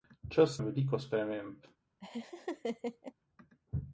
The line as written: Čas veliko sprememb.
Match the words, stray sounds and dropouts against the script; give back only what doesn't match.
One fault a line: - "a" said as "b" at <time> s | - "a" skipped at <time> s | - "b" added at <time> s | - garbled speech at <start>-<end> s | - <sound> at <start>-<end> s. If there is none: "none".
- laugh at 2.0-3.1 s